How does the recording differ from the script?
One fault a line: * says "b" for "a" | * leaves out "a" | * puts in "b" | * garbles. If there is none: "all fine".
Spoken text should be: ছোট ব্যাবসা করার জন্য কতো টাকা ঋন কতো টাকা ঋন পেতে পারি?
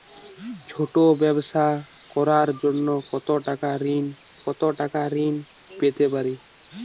all fine